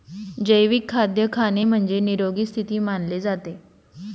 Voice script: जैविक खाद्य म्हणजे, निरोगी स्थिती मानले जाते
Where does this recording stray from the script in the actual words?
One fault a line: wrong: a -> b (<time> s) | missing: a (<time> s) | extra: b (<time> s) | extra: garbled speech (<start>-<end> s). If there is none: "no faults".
extra: खाणे (1.3 s)